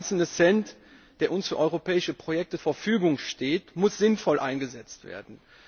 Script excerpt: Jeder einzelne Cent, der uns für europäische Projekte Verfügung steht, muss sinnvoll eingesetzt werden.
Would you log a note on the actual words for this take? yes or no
no